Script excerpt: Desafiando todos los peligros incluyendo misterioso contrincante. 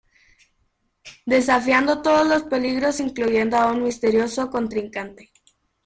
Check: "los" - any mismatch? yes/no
no